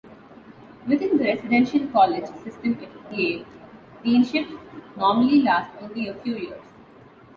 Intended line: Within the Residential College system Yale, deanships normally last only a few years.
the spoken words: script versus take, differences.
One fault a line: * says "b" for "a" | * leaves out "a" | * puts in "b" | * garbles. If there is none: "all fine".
* puts in "at"